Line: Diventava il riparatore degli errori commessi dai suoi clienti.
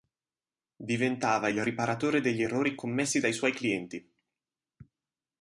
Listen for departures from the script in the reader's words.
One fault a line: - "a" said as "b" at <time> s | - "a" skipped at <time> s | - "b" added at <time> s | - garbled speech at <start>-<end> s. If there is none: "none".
none